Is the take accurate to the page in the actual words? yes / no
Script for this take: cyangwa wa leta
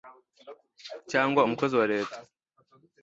no